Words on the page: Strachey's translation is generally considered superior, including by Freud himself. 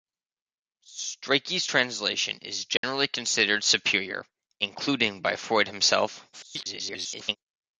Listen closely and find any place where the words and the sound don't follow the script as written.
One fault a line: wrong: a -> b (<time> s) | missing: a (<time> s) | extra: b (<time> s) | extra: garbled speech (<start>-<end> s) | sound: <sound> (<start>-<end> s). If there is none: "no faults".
sound: dropout (2.8-2.8 s)
extra: garbled speech (6.3-7.4 s)